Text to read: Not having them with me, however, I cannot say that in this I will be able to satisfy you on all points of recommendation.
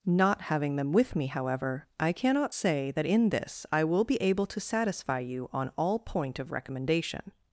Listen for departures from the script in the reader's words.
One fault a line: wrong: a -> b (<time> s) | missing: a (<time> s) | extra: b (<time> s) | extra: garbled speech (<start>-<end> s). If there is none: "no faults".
wrong: points -> point (6.0 s)